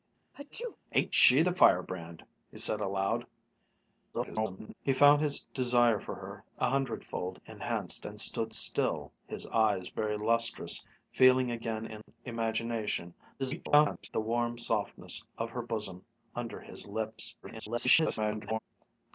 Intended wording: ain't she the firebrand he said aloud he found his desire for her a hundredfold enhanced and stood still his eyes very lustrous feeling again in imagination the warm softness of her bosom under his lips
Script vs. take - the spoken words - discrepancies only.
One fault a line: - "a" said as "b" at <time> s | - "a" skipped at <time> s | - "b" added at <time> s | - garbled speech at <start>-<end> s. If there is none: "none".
- garbled speech at 4.1-4.7 s
- garbled speech at 13.4-14.1 s
- garbled speech at 17.4-18.6 s